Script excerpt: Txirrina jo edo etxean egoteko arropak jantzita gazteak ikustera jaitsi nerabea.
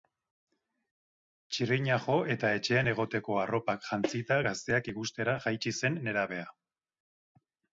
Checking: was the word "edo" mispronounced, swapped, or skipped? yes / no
yes